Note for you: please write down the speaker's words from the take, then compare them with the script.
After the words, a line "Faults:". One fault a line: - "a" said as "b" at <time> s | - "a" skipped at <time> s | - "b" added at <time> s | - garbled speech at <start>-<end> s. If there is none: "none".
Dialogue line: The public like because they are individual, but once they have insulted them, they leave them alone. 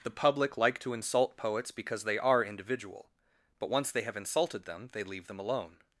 The public like to insult poets because they are individual, but once they have insulted them, they leave them alone.
Faults:
- "to insult poets" added at 0.8 s